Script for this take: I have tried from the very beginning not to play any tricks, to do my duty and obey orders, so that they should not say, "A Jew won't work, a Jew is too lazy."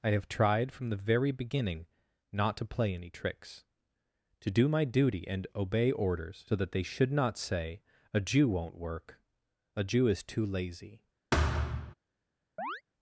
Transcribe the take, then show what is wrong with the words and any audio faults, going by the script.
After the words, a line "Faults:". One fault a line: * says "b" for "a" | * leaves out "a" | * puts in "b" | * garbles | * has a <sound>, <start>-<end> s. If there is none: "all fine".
I have tried from the very beginning not to play any tricks, to do my duty and obey orders, so that they should not say, "A Jew won't work, a Jew is too lazy."
Faults:
* has a thud, 11.3-11.9 s
* has a chirp, 12.6-12.8 s